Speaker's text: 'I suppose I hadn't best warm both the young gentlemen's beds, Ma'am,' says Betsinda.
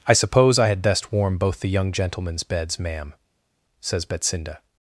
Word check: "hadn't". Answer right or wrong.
wrong